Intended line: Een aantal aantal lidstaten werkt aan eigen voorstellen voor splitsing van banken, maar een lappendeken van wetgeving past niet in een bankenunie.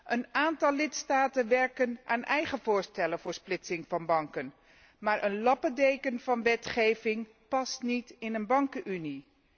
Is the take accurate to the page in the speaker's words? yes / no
no